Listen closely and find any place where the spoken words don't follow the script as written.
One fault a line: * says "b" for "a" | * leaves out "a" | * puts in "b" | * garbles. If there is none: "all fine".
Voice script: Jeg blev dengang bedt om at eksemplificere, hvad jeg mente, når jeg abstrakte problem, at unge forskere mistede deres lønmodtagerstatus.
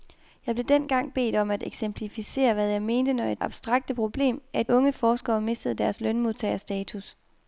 all fine